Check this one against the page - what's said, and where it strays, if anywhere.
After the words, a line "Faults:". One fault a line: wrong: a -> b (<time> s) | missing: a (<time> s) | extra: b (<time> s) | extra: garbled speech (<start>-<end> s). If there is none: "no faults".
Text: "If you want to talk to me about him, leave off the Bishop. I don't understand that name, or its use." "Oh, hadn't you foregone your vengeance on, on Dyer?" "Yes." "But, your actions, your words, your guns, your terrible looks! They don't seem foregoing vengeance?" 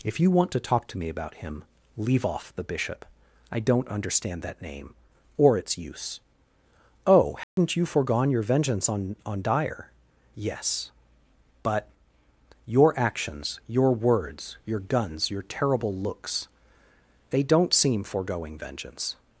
"If you want to talk to me about him, leave off the Bishop. I don't understand that name, or its use." "Oh, hadn't you foregone your vengeance on, on Dyer?" "Yes." "But, your actions, your words, your guns, your terrible looks! They don't seem foregoing vengeance?"
Faults:
no faults